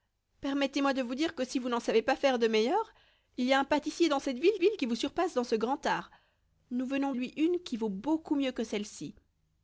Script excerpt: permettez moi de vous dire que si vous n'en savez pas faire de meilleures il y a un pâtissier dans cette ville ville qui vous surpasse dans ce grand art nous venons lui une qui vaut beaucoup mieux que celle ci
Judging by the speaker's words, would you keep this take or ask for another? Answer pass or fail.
pass